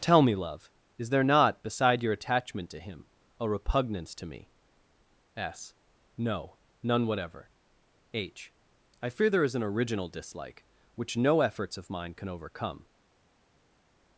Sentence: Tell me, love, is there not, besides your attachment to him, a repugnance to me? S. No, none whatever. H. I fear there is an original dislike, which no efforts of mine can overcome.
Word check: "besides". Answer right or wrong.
wrong